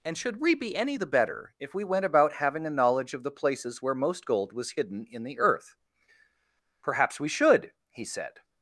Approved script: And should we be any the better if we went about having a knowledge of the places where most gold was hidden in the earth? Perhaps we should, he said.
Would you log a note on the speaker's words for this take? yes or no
no